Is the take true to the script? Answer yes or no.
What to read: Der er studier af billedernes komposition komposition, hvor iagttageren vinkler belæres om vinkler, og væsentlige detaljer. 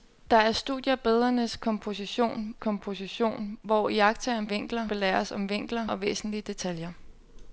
yes